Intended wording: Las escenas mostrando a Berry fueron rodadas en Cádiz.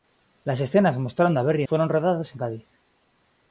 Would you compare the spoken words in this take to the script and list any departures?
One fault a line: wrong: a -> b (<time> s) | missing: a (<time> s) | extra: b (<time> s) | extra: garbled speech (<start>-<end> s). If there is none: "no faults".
no faults